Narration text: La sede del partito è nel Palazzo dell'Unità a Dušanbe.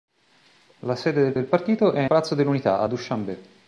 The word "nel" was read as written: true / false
false